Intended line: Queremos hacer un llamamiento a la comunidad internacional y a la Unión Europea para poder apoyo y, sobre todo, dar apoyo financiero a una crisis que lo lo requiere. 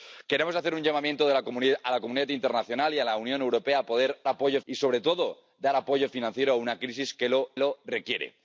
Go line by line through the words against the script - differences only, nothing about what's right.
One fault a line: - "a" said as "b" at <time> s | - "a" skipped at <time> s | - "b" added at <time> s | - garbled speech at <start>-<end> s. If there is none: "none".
none